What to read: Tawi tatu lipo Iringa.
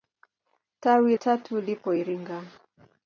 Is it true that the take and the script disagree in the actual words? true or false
false